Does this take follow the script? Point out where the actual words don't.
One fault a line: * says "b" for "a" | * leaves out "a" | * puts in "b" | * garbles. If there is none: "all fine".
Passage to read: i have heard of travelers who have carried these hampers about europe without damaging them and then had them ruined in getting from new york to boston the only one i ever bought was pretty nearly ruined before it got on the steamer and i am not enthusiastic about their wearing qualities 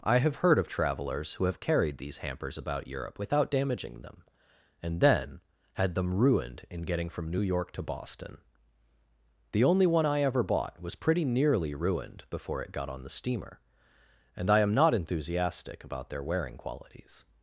all fine